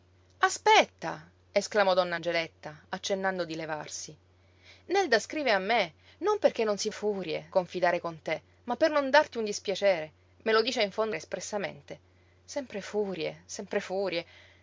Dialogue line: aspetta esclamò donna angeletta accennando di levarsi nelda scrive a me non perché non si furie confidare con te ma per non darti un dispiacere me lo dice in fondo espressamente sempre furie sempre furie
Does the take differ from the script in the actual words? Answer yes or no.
no